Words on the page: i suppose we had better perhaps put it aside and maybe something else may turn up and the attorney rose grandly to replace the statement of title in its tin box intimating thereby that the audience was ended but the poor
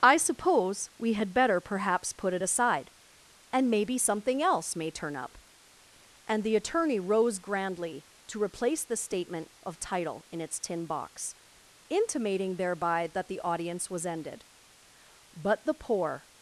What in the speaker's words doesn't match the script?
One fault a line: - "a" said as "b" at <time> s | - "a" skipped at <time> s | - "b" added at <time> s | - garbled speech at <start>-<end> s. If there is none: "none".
none